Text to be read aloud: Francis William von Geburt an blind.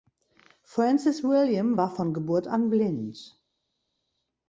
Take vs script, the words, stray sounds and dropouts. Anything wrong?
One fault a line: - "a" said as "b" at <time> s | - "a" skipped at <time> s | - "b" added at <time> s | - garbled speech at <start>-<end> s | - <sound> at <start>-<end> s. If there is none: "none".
- "war" added at 1.7 s